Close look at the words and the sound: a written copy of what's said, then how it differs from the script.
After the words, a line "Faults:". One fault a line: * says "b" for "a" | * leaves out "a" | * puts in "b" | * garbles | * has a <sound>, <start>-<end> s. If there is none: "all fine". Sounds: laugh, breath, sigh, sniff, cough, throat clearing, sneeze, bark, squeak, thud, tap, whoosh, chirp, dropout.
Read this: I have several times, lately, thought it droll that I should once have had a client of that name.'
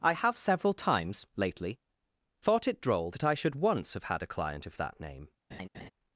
I have several times, lately, thought it droll that I should once have had a client of that name.'
Faults:
* has a laugh, 5.5-5.9 s